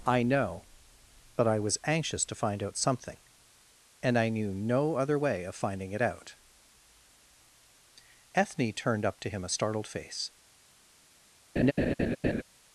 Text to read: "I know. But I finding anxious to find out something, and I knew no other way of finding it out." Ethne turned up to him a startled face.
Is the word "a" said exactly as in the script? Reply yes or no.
yes